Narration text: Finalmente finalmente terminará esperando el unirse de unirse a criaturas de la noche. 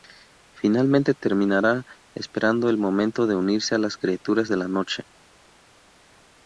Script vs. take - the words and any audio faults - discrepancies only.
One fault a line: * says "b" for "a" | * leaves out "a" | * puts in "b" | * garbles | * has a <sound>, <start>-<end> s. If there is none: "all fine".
* leaves out "finalmente"
* says "momento" for "unirse"
* puts in "las"